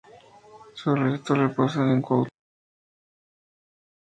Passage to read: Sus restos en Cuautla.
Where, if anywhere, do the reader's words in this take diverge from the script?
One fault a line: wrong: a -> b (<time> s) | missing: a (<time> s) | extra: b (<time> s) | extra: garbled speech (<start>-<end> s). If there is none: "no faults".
extra: reposan (1.4 s)